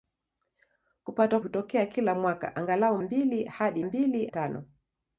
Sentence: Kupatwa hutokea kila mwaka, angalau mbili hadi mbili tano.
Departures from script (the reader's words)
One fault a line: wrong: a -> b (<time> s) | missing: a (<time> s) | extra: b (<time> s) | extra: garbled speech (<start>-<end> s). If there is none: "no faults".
no faults